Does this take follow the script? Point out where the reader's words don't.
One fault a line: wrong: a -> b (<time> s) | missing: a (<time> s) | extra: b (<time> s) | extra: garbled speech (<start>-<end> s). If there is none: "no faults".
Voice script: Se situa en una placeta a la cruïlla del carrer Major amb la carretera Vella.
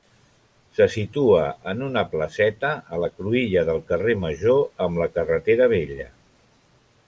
no faults